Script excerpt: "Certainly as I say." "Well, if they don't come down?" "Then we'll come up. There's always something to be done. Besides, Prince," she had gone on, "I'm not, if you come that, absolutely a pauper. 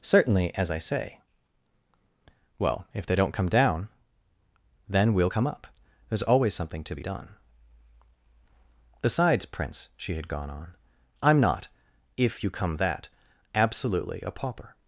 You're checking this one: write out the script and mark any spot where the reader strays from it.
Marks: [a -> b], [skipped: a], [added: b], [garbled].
"Certainly as I say." "Well, if they don't come down?" "Then we'll come up. There's always something to be done. Besides, Prince," she had gone on, "I'm not, if you come that, absolutely a pauper.